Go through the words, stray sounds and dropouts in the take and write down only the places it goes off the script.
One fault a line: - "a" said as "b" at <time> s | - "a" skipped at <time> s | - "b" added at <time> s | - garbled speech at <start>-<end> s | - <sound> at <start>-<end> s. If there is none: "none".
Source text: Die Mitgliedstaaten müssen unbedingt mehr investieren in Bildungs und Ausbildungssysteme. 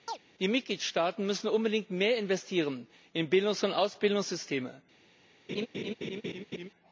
- chirp at 0.1-0.2 s
- laugh at 5.5-6.7 s